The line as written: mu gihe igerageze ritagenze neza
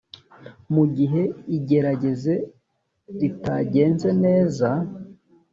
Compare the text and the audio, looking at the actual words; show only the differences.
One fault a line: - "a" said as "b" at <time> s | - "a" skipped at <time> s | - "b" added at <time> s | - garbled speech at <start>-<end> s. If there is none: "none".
none